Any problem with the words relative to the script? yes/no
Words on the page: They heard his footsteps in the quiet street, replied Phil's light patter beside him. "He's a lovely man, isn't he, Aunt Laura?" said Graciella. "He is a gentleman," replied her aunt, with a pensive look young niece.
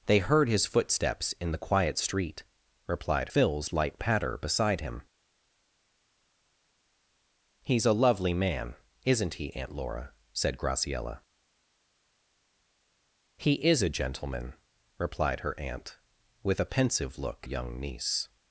no